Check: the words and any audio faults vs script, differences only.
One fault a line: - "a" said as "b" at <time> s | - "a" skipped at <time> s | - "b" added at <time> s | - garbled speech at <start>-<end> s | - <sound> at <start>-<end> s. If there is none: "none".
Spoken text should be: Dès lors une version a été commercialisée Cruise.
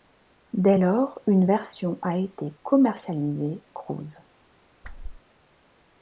- whoosh at 4.8-5.2 s